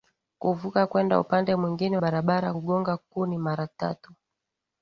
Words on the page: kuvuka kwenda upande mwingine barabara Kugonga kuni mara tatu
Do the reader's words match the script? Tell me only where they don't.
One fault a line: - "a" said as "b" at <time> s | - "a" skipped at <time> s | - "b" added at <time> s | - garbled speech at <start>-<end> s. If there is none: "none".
none